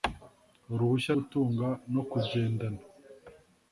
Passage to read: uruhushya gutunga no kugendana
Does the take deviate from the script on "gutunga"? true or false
false